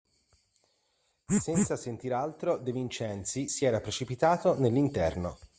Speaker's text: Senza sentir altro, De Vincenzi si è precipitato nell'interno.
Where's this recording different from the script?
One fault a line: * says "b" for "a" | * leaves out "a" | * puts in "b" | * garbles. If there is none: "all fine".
* says "era" for "è"